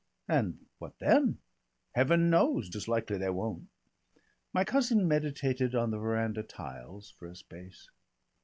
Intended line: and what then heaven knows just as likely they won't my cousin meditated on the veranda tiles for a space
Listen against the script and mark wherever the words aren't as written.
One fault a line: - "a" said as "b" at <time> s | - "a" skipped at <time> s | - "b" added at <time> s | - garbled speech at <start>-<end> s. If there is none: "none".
- "just" skipped at 2.7 s